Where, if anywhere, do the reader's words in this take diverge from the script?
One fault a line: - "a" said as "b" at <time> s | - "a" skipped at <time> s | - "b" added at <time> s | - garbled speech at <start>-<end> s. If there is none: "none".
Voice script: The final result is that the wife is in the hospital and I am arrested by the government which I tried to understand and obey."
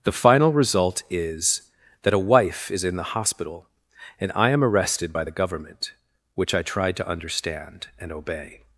- "the" said as "a" at 2.1 s